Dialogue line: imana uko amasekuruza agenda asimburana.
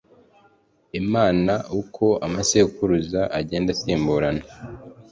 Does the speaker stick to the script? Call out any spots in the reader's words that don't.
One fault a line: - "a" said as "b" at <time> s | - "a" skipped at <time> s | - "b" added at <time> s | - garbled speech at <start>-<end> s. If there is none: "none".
none